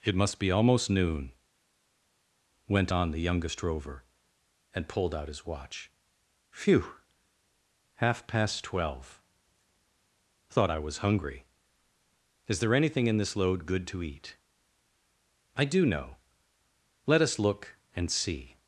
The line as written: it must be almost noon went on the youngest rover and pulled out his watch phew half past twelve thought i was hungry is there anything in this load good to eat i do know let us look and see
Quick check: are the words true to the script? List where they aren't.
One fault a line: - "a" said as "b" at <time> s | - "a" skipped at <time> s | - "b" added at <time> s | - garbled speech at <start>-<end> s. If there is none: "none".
none